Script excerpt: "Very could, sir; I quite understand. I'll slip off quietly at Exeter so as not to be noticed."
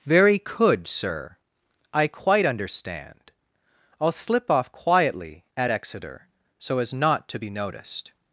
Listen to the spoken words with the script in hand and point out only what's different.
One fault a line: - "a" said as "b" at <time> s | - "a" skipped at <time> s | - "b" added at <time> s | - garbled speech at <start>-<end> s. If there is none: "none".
none